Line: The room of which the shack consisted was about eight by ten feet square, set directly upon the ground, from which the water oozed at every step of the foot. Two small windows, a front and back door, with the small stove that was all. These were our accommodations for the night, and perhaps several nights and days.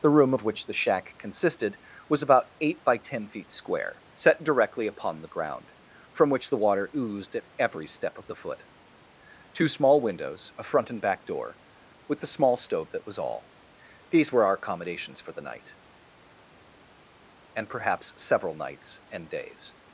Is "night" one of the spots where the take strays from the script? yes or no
no